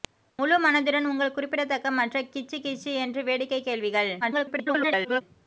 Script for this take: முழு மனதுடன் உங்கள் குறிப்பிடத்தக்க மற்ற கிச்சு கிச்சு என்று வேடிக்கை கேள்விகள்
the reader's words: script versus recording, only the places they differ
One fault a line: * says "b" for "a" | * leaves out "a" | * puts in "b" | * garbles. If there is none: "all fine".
* garbles